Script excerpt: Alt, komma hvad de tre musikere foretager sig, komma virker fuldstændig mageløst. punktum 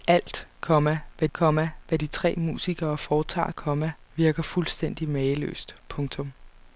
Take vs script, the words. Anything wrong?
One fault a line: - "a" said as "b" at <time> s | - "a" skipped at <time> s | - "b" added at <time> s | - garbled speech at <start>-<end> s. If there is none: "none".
- "komma hvad" added at 1.3 s
- "sig" skipped at 3.5 s